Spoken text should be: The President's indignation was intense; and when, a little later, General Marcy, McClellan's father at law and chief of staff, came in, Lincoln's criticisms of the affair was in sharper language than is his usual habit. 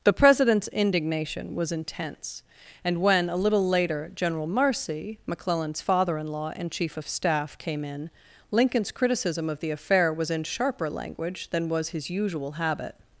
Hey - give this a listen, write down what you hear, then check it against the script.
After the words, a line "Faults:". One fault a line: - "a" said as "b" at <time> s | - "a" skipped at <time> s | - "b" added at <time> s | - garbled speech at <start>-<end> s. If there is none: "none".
The President's indignation was intense; and when, a little later, General Marcy, McClellan's father in law and chief of staff, came in, Lincoln's criticism of the affair was in sharper language than was his usual habit.
Faults:
- "at" said as "in" at 6.2 s
- "criticisms" said as "criticism" at 8.9 s
- "is" said as "was" at 11.7 s